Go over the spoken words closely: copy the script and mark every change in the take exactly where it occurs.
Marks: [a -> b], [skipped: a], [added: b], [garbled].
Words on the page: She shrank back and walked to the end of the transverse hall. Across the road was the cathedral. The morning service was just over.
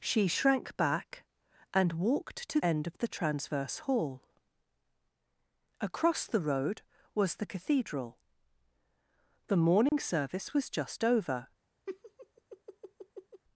She shrank back and walked to [skipped: the] end of the transverse hall. Across the road was the cathedral. The morning service was just over.